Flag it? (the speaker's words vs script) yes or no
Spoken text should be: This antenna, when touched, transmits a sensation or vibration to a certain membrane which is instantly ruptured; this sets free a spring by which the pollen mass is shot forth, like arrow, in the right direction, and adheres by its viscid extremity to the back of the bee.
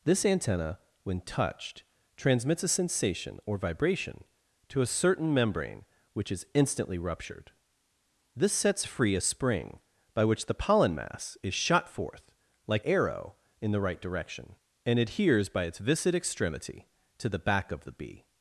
no